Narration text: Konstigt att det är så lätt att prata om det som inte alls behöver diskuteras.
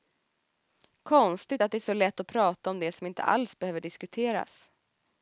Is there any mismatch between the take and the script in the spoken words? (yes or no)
no